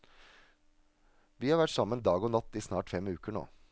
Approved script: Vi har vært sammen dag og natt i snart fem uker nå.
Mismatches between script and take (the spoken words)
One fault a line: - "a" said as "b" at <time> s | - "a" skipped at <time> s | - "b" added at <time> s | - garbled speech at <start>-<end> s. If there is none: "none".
none